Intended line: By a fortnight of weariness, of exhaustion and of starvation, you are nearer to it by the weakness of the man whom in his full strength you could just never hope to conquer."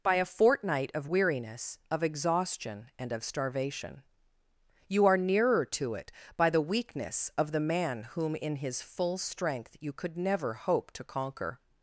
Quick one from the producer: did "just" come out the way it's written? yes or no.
no